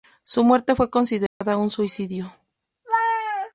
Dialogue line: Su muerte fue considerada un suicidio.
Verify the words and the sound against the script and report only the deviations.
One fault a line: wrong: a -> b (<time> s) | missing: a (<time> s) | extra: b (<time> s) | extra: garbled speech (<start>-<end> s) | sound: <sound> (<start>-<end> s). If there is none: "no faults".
sound: dropout (1.3-1.4 s)